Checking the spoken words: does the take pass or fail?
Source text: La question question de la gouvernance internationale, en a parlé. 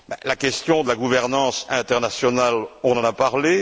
fail